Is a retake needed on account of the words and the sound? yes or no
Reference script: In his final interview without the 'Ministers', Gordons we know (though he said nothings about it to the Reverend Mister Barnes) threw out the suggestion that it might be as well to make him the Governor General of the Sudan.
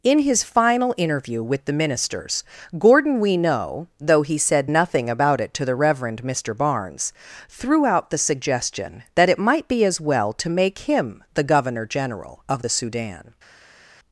yes